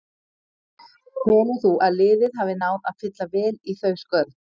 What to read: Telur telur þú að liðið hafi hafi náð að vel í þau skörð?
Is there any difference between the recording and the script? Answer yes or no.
yes